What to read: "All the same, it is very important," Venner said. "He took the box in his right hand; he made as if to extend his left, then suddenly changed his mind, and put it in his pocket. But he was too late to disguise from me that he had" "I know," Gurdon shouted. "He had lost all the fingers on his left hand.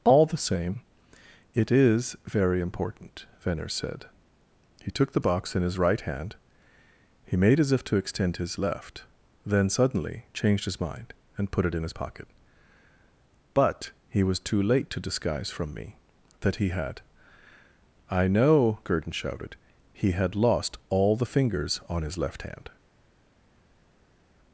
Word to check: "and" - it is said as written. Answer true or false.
true